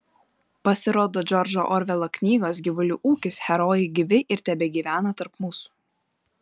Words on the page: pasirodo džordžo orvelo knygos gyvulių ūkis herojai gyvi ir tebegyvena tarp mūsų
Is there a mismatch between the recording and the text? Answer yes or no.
no